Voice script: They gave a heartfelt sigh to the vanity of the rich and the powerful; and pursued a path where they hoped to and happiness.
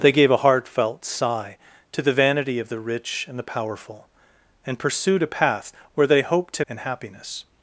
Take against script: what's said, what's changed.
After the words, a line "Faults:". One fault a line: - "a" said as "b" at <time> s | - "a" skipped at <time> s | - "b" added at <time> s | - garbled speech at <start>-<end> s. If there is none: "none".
They gave a heartfelt sigh to the vanity of the rich and the powerful; and pursued a path where they hoped to and happiness.
Faults:
none